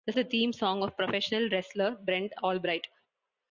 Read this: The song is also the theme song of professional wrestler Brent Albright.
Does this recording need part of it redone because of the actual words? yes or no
yes